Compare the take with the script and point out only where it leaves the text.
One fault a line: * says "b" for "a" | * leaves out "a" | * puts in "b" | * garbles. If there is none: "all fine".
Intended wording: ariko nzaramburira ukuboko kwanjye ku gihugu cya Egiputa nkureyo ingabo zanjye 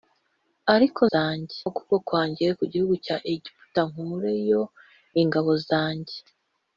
* says "zanjye" for "nzaramburira"